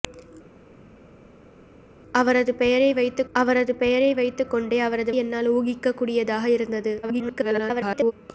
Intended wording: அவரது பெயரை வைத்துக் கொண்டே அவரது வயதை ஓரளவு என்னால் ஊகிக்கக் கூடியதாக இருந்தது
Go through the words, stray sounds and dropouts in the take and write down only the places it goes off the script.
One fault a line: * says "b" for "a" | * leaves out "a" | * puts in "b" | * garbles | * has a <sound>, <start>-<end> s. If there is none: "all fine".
* puts in "அவரது பெயரை வைத்துக்"
* leaves out "வயதை ஓரளவு"
* garbles